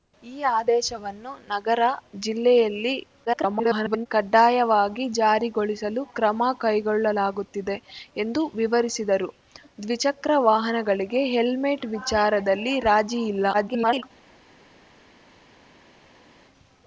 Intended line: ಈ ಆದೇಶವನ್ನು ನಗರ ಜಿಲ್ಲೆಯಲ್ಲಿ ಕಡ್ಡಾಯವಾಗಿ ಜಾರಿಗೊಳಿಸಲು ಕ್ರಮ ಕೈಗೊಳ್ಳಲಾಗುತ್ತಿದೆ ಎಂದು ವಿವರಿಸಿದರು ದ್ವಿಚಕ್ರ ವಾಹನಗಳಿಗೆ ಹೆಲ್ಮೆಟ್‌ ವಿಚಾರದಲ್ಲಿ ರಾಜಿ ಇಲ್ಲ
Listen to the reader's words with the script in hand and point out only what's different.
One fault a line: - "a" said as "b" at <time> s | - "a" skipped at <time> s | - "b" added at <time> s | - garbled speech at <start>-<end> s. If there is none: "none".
- garbled speech at 3.2-4.1 s
- garbled speech at 13.5-14.0 s